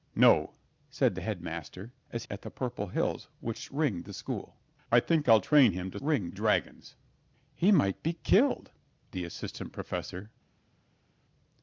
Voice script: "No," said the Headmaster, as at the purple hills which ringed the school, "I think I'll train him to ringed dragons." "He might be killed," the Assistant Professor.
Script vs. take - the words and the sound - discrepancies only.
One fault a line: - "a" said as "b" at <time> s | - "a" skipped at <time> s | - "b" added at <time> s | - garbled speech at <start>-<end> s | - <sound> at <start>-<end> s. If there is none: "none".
none